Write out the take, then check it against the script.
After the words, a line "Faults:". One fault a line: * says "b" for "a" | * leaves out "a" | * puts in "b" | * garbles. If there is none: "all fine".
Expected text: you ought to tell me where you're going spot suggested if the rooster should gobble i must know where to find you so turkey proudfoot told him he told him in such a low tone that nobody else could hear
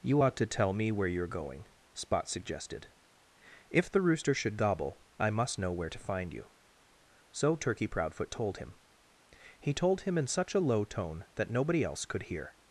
you ought to tell me where you're going spot suggested if the rooster should gobble i must know where to find you so turkey proudfoot told him he told him in such a low tone that nobody else could hear
Faults:
all fine